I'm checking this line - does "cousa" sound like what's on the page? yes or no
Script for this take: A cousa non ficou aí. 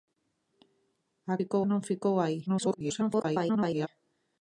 no